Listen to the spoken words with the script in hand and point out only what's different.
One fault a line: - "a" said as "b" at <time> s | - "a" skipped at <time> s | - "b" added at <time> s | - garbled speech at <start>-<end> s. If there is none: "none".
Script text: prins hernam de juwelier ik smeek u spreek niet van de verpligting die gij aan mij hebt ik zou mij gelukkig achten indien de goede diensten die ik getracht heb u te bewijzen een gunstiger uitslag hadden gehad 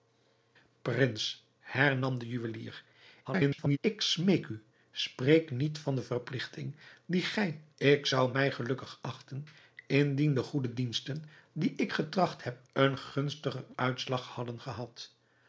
- garbled speech at 3.2-3.8 s
- "aan mij hebt" skipped at 7.6 s
- "u te bewijzen" skipped at 12.6 s